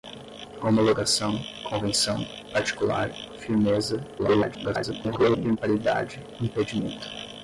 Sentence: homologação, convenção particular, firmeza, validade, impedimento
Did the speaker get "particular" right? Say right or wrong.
right